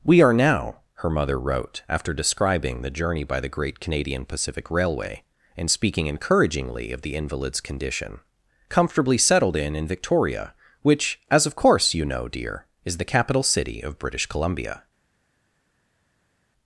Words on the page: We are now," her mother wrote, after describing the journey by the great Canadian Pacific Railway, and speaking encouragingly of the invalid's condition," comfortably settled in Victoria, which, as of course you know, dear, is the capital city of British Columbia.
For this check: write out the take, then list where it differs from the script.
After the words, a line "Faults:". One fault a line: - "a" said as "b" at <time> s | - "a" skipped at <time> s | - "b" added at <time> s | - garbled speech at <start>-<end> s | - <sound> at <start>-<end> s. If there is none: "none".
We are now," her mother wrote, after describing the journey by the great Canadian Pacific Railway, and speaking encouragingly of the invalid's condition," comfortably settled in in Victoria, which, as of course you know, dear, is the capital city of British Columbia.
Faults:
- "in" added at 9.8 s